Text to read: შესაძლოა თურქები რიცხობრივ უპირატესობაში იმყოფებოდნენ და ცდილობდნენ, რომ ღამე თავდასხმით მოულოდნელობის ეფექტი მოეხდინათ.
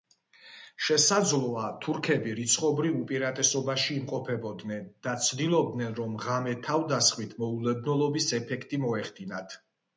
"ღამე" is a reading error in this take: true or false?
false